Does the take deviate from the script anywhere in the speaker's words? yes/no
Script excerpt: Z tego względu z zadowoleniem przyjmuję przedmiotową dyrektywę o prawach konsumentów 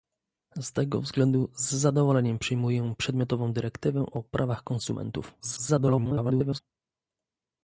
yes